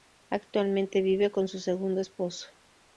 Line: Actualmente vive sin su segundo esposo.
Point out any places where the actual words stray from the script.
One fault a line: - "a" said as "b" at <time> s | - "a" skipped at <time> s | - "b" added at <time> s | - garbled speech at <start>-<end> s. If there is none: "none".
- "sin" said as "con" at 1.3 s